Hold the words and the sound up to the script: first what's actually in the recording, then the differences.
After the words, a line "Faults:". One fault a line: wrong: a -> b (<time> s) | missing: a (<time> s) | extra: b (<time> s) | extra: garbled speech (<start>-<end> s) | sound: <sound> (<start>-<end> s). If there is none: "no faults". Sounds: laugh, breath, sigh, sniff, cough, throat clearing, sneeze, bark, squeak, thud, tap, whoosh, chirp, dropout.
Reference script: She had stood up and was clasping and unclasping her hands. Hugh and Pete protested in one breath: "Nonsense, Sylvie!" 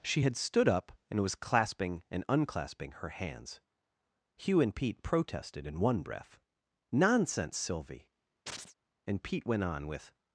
She had stood up and was clasping and unclasping her hands. Hugh and Pete protested in one breath: "Nonsense, Sylvie!" And Pete went on with
Faults:
sound: chirp (8.5-8.7 s)
extra: And Pete went on with (9.1 s)